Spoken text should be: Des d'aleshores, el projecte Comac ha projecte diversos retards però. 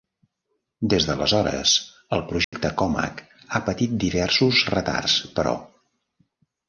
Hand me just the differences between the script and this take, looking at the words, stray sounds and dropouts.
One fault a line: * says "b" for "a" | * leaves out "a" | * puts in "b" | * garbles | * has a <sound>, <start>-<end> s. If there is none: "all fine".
* has a dropout, 2.4-2.5 s
* says "patit" for "projecte"